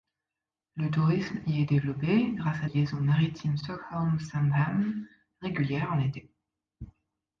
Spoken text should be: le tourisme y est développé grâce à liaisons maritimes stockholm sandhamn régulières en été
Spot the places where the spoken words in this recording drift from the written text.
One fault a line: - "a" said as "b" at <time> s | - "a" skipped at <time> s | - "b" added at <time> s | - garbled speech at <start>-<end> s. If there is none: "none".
none